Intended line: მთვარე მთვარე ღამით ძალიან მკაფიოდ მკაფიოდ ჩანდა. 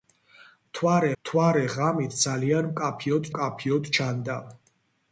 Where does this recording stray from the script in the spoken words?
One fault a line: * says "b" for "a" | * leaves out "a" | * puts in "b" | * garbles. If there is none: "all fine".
all fine